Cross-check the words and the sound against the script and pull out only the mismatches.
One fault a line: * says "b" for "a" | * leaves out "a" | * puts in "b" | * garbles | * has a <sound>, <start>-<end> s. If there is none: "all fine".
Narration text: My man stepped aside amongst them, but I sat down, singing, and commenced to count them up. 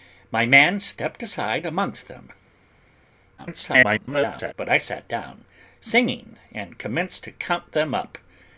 * garbles